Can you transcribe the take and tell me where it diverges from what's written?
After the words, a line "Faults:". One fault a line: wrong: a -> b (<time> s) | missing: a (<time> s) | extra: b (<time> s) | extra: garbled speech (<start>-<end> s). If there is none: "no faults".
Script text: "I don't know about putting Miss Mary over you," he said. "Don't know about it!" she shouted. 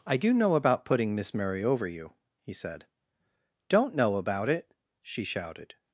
"I do know about putting Miss Mary over you," he said. "Don't know about it!" she shouted.
Faults:
wrong: don't -> do (0.2 s)